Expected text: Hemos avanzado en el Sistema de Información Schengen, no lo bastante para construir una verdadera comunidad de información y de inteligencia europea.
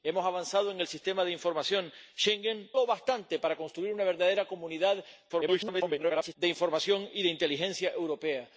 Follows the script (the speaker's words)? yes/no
no